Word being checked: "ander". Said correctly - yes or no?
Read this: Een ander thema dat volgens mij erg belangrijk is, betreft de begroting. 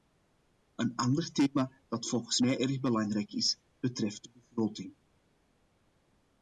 yes